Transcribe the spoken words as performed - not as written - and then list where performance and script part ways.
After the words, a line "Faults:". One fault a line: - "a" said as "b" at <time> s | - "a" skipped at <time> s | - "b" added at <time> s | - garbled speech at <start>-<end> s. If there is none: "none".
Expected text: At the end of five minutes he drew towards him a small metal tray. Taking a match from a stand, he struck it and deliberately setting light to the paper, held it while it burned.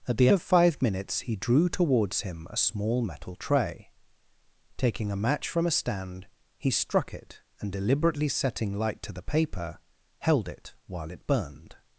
At the of five minutes he drew towards him a small metal tray. Taking a match from a stand, he struck it and deliberately setting light to the paper, held it while it burned.
Faults:
- "end" skipped at 0.3 s